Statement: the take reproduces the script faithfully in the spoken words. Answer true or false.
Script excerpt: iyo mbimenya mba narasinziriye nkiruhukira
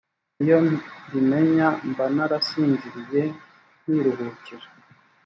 true